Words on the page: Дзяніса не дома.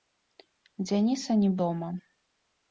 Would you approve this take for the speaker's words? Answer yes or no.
yes